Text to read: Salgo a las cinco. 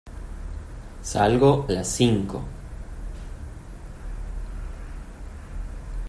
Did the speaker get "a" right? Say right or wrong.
wrong